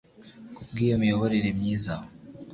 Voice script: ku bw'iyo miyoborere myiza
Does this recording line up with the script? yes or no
yes